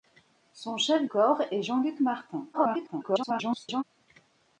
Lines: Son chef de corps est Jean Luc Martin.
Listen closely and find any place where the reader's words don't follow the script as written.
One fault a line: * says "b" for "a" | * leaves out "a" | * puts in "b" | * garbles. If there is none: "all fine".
* leaves out "de"
* garbles